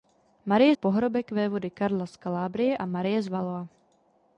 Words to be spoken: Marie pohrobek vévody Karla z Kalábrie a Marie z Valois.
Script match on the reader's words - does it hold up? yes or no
yes